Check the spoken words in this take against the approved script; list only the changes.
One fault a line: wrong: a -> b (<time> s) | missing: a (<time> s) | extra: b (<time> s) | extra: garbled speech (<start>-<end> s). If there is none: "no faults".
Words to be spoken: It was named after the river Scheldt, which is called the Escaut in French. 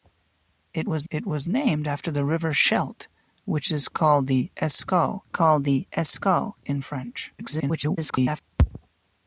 extra: it was (1.1 s)
extra: called the Escaut (5.3 s)
extra: garbled speech (7.4-8.4 s)